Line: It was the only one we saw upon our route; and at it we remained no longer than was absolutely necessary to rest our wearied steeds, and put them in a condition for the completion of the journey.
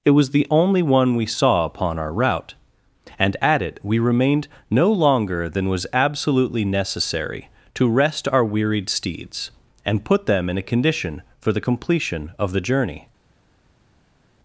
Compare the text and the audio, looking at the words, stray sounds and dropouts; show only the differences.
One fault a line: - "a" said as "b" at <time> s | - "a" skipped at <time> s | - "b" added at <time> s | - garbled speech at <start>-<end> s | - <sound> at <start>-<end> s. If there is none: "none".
none